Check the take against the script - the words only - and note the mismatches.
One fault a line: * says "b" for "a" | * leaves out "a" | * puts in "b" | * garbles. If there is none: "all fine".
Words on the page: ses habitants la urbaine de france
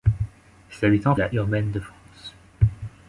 all fine